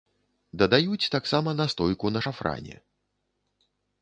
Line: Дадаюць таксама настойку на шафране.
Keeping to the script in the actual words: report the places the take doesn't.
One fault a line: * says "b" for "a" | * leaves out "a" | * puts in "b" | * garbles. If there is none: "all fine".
all fine